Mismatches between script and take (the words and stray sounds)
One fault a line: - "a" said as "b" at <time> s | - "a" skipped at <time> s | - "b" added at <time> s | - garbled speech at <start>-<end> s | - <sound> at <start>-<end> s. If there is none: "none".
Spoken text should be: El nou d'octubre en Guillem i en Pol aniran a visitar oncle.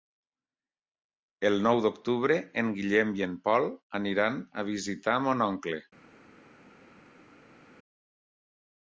- "mon" added at 5.3 s